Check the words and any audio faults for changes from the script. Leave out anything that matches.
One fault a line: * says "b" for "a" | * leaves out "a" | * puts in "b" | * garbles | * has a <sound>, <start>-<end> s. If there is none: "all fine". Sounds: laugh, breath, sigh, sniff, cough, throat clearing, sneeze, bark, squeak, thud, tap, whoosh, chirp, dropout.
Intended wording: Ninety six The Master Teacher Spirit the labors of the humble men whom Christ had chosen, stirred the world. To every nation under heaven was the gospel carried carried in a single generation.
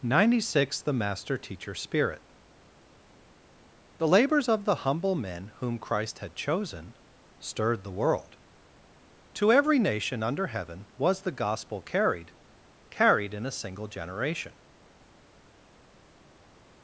all fine